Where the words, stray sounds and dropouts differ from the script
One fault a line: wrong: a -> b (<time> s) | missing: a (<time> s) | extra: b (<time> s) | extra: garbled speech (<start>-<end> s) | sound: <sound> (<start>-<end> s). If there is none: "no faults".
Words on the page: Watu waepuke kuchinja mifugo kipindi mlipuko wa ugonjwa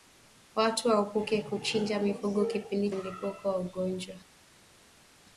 no faults